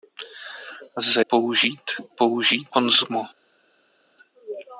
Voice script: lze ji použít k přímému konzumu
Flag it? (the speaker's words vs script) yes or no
yes